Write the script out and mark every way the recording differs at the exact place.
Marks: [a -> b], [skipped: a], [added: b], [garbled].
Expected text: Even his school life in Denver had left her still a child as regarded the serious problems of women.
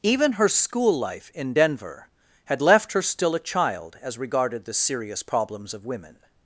Even [his -> her] school life in Denver had left her still a child as regarded the serious problems of women.